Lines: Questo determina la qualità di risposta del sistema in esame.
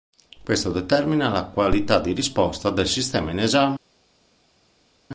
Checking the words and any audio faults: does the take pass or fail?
pass